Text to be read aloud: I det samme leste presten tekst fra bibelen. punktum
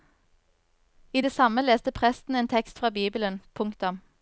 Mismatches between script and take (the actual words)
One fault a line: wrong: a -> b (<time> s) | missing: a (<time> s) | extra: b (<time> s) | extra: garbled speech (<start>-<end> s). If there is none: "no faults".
extra: en (2.4 s)